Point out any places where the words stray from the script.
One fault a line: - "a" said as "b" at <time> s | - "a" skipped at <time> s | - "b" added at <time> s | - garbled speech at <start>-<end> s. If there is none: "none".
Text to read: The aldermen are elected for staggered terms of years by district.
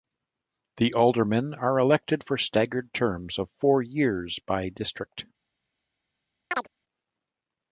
- "four" added at 3.6 s